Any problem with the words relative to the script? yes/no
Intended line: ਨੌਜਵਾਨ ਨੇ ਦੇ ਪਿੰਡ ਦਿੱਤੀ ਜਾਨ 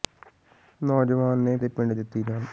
no